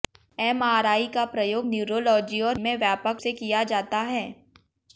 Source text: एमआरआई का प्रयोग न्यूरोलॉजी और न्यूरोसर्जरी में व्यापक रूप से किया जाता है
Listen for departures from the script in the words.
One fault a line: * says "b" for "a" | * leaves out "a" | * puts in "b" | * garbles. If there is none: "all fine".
* leaves out "न्यूरोसर्जरी"
* leaves out "रूप"